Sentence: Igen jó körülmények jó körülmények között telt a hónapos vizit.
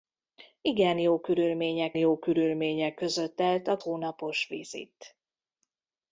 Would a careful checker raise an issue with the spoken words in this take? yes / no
no